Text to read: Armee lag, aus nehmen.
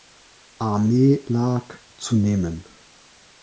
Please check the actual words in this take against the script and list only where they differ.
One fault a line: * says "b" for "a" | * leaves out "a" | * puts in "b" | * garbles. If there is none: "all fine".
* says "zu" for "aus"